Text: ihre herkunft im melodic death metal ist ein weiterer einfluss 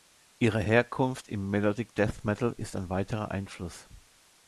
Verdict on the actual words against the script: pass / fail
pass